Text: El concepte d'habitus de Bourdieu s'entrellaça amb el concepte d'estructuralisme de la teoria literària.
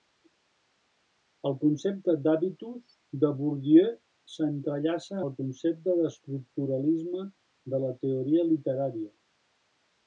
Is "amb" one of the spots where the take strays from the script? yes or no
yes